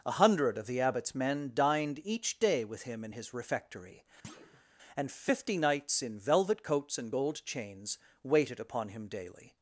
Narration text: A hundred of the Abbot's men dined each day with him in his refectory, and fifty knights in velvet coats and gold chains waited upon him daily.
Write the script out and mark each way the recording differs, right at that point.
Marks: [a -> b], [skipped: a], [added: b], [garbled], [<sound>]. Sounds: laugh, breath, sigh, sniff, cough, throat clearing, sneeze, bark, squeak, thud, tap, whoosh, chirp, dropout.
A hundred of the Abbot's men dined each day with him in his refectory, [thud] and fifty knights in velvet coats and gold chains waited upon him daily.